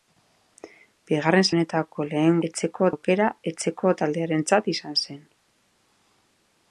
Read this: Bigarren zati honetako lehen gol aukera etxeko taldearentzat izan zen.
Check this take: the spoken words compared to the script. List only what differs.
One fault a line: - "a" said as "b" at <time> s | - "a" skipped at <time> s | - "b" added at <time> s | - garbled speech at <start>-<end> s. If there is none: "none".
- "zati" skipped at 1.4 s
- "gol" said as "etxeko" at 2.5 s